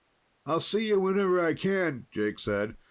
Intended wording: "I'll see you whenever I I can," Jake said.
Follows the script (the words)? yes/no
no